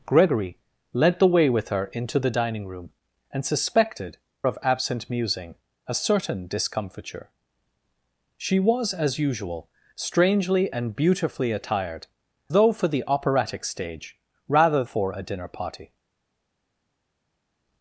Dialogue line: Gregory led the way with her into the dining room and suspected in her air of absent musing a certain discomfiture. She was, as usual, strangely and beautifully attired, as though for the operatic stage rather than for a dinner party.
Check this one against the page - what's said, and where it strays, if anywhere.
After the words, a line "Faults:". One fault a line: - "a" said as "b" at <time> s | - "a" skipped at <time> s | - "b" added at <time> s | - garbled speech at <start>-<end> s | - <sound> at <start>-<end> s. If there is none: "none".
Gregory led the way with her into the dining room and suspected of absent musing a certain discomfiture. She was, as usual, strangely and beautifully attired, though for the operatic stage rather for a dinner party.
Faults:
- "in her air" skipped at 4.2 s
- "as" skipped at 12.1 s
- "than" skipped at 14.8 s